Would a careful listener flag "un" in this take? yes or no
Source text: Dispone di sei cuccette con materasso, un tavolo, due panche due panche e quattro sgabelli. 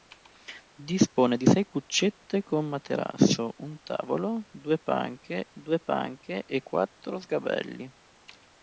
no